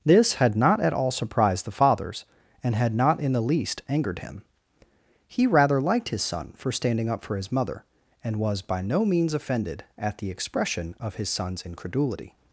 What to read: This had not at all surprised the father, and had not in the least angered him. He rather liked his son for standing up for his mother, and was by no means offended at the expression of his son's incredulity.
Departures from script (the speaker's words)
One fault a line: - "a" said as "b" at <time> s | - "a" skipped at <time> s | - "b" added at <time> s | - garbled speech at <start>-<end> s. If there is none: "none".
- "father" said as "fathers" at 1.7 s